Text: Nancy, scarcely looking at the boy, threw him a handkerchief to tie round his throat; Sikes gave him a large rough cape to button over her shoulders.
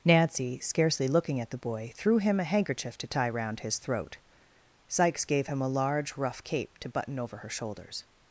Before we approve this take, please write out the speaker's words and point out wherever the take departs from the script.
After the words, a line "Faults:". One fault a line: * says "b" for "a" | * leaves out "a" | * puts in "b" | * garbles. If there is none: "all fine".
Nancy, scarcely looking at the boy, threw him a handkerchief to tie round his throat; Sikes gave him a large rough cape to button over her shoulders.
Faults:
all fine